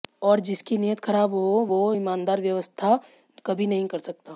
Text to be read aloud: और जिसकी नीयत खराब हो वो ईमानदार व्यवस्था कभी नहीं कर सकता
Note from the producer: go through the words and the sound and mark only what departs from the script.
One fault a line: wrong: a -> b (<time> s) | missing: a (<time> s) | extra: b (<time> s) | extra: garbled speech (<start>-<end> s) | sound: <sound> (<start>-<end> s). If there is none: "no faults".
no faults